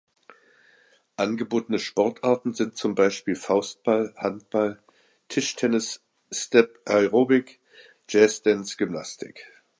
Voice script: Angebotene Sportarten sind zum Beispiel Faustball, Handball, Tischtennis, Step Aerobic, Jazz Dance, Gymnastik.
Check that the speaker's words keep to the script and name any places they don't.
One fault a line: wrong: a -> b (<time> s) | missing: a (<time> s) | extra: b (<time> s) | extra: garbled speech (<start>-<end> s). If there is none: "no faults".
no faults